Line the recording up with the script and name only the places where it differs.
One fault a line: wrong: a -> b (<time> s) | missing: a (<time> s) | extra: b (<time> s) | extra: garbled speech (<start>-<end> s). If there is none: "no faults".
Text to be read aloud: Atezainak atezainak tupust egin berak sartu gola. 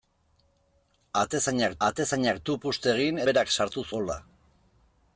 no faults